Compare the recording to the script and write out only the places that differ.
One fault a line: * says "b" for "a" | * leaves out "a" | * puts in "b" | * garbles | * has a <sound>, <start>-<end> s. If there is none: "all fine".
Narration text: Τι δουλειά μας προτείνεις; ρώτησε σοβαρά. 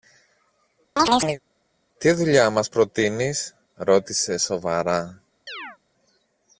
* has a chirp, 1.0-1.4 s
* has a chirp, 5.5-5.8 s